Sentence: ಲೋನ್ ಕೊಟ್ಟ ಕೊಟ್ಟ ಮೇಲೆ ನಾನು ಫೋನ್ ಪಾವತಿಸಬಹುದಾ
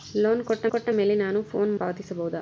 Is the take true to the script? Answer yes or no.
yes